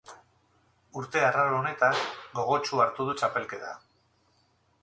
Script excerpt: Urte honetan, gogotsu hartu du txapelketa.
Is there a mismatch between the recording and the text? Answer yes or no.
yes